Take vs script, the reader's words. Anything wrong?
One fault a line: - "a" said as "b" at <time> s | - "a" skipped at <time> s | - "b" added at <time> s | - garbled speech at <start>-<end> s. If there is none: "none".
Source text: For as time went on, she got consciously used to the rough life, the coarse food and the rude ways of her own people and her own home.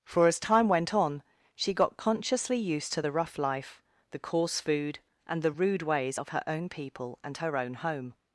none